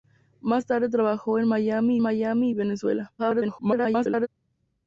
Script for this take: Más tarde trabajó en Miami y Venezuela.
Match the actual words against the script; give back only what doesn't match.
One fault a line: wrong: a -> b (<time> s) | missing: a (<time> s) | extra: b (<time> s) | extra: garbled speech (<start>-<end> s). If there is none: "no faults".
extra: Miami (2.0 s)
extra: garbled speech (3.2-4.3 s)